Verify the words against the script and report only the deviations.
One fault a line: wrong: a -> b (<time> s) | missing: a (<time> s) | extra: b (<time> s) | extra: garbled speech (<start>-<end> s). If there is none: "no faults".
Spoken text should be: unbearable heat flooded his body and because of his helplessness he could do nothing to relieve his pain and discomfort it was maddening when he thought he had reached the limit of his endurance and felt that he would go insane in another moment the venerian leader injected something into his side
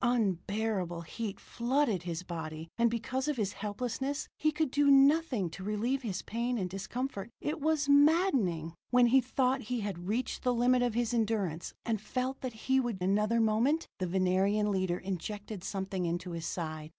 missing: go insane in (13.0 s)